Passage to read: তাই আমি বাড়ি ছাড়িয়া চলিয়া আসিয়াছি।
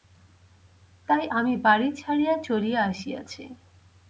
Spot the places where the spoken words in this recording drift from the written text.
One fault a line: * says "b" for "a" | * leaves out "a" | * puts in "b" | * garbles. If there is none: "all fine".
all fine